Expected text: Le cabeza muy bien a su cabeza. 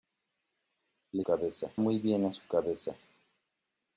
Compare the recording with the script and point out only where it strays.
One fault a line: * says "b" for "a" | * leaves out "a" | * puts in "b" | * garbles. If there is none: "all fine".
all fine